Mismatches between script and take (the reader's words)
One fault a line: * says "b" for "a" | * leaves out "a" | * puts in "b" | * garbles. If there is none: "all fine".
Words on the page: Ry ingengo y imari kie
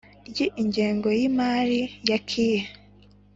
* puts in "ya"